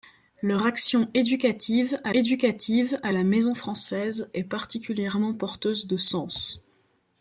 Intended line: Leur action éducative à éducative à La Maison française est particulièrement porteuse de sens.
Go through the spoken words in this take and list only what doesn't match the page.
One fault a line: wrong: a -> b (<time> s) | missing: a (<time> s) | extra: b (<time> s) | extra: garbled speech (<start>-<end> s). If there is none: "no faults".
no faults